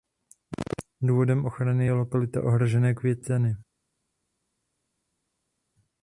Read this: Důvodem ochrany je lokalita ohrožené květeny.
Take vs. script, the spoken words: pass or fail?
pass